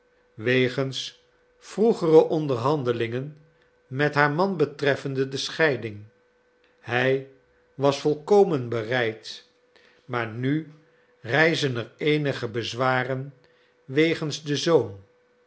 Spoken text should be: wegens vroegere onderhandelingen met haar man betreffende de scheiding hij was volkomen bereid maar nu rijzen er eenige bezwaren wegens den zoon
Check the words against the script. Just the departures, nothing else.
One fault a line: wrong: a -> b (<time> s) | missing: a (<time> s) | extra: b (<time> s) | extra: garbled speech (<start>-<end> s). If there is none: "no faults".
no faults